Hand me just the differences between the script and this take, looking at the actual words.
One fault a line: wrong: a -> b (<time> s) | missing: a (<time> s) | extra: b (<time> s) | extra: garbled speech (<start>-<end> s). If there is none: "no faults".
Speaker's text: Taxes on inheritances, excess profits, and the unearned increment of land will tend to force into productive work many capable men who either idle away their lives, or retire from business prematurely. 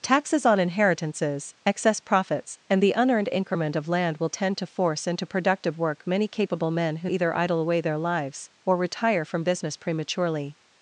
no faults